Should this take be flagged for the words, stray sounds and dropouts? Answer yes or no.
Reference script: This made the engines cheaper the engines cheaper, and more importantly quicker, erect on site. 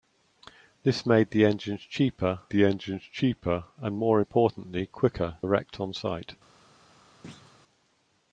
yes